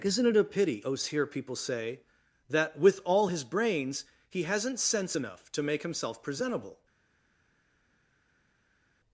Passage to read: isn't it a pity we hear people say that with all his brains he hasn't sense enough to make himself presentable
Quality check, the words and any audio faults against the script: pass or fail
fail